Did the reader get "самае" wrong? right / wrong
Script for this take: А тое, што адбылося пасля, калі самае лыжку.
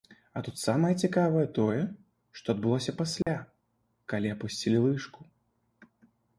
wrong